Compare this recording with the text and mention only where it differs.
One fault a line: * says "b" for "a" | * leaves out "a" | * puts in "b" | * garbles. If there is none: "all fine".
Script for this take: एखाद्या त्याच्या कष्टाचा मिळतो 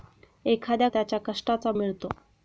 all fine